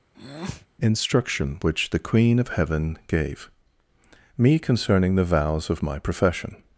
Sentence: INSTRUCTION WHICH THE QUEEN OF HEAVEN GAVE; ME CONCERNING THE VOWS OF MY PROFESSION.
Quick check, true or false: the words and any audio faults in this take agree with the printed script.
false